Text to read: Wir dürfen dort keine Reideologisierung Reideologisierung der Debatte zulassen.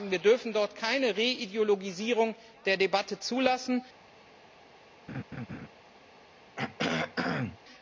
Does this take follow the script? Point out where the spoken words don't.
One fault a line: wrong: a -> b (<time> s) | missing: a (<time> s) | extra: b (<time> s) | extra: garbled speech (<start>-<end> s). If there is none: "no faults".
missing: Reideologisierung (2.3 s)